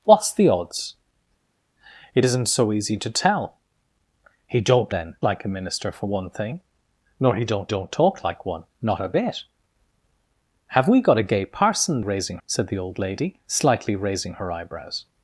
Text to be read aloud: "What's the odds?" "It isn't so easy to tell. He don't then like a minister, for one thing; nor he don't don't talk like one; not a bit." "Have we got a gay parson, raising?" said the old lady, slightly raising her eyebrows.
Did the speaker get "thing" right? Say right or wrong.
right